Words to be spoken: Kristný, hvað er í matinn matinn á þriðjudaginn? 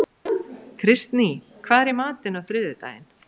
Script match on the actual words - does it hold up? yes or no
no